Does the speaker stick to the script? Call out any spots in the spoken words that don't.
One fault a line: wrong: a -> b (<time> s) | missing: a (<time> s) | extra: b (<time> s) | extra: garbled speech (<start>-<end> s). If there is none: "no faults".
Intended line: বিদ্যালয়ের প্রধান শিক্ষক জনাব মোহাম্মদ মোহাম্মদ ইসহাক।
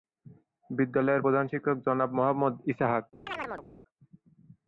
missing: মোহাম্মদ (2.5 s)